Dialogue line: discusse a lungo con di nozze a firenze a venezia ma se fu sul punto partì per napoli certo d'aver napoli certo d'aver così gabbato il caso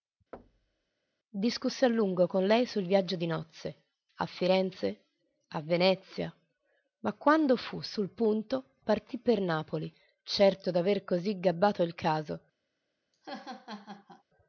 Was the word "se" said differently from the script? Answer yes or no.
yes